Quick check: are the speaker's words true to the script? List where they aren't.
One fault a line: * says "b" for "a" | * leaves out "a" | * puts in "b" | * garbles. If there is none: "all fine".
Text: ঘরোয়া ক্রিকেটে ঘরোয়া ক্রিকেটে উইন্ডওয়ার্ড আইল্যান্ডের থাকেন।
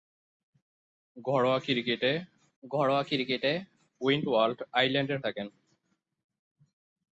all fine